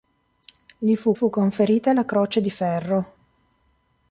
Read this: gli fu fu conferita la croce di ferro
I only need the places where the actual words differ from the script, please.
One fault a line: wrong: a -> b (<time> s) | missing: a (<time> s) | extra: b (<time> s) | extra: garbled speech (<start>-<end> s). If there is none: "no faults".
no faults